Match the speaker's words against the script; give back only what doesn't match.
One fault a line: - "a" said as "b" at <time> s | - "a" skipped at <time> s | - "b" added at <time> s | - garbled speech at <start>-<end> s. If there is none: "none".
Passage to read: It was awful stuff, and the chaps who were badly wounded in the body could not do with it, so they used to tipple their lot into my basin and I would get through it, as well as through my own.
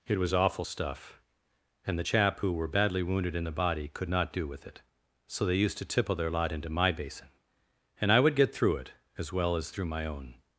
- "chaps" said as "chap" at 2.0 s